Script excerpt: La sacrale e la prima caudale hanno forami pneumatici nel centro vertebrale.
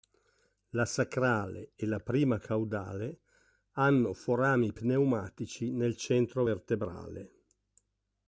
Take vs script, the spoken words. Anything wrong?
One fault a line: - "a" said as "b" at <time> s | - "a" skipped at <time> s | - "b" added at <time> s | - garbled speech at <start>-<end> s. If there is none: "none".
none